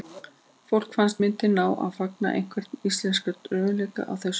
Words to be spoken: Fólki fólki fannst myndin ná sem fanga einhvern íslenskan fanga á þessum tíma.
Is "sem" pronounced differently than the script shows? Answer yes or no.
yes